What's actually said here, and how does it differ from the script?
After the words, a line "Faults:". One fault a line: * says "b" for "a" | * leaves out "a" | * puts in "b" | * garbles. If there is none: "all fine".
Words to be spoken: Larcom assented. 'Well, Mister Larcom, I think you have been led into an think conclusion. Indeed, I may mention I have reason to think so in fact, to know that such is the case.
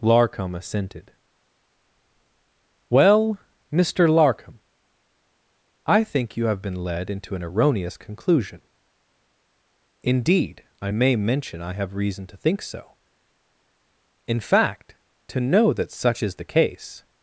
Larcom assented. 'Well, Mister Larcom, I think you have been led into an erroneous conclusion. Indeed, I may mention I have reason to think so in fact, to know that such is the case.
Faults:
* says "erroneous" for "think"